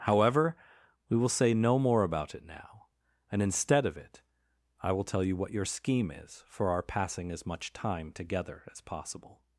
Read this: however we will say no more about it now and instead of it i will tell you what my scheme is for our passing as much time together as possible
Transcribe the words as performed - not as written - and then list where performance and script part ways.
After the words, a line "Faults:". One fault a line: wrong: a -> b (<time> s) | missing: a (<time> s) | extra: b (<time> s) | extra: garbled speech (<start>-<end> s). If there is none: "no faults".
however we will say no more about it now and instead of it i will tell you what your scheme is for our passing as much time together as possible
Faults:
wrong: my -> your (5.5 s)